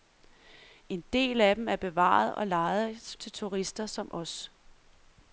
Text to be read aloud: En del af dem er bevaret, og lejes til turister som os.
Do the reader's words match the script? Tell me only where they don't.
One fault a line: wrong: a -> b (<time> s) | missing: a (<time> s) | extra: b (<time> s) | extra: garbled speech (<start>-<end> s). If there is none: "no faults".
no faults